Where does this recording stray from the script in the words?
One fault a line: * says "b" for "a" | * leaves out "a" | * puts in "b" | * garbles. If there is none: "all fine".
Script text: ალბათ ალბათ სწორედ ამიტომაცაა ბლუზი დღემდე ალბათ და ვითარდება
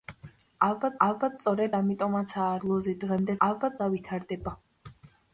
all fine